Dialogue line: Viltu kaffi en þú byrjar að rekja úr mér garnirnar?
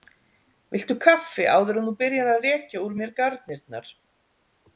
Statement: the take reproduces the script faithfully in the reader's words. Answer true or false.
false